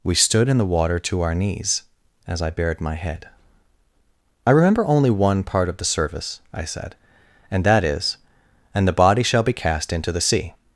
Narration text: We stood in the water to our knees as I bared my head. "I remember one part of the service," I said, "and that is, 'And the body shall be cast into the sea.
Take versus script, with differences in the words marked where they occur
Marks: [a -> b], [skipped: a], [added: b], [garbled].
We stood in the water to our knees as I bared my head. "I remember [added: only] one part of the service," I said, "and that is, 'And the body shall be cast into the sea.